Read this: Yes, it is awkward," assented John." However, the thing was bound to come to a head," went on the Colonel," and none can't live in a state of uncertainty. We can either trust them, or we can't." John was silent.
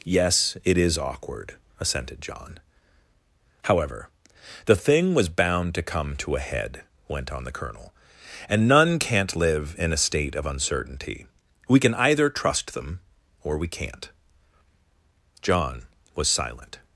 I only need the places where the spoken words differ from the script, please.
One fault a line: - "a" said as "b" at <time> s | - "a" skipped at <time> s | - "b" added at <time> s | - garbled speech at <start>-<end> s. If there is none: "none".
none